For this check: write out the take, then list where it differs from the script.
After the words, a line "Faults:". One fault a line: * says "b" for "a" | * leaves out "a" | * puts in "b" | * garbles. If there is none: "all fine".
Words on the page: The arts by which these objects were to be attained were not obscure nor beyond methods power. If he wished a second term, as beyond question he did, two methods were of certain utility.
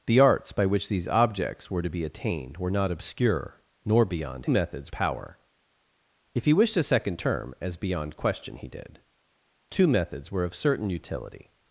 The arts by which these objects were to be attained were not obscure nor beyond methods power. If he wished a second term, as beyond question he did, two methods were of certain utility.
Faults:
all fine